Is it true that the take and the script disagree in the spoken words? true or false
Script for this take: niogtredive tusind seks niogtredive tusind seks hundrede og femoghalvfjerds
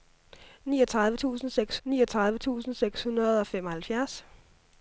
false